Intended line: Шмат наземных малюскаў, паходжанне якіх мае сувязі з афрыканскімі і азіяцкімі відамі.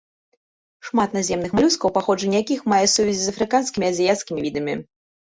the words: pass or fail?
pass